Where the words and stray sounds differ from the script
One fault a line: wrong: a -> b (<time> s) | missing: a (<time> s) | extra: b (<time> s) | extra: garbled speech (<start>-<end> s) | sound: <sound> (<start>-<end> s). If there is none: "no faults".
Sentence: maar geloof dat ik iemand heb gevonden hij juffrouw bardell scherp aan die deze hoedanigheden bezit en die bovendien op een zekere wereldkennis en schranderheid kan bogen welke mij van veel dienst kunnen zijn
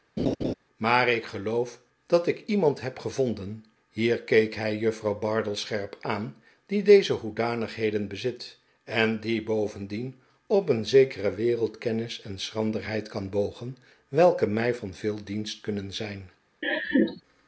sound: laugh (0.2-0.5 s)
extra: ik (1.1 s)
extra: hier keek (3.9 s)
sound: laugh (16.6-17.2 s)